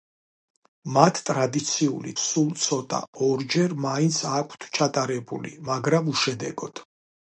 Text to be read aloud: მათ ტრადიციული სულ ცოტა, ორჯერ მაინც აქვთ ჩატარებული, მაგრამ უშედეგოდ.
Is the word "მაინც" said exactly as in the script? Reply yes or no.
yes